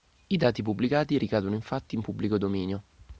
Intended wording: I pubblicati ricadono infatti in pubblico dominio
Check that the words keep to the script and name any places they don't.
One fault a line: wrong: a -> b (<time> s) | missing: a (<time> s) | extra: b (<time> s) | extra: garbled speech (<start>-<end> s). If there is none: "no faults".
extra: dati (0.3 s)